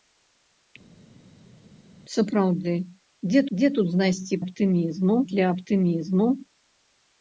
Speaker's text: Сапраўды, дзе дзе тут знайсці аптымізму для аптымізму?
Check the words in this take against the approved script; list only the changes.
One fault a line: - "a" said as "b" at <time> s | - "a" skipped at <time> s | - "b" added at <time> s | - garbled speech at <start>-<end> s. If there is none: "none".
none